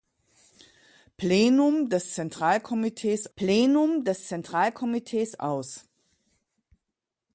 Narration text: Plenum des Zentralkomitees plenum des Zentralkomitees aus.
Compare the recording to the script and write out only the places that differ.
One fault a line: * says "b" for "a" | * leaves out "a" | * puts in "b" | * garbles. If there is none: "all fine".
all fine